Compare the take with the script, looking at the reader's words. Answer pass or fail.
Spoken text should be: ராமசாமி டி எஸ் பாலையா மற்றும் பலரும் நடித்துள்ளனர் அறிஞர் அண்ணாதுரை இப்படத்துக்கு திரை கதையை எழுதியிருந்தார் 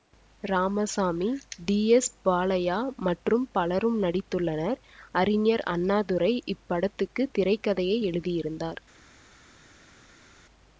pass